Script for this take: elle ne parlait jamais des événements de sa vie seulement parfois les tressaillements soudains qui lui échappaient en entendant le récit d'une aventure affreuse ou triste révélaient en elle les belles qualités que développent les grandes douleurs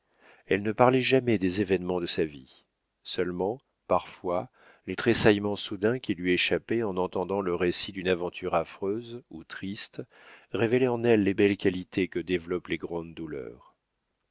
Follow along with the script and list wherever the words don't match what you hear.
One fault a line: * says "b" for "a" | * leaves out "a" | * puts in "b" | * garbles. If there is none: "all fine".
all fine